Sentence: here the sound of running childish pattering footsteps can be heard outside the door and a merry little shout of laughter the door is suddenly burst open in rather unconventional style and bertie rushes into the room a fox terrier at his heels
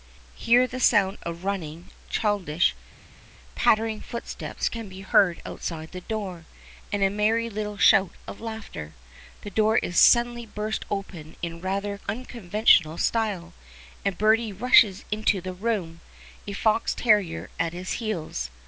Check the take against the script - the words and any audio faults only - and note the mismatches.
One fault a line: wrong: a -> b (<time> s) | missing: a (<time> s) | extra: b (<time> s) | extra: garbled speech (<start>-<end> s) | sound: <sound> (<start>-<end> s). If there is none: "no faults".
no faults